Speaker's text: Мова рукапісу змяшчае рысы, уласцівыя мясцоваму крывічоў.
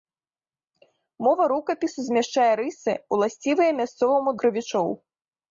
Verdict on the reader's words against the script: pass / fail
pass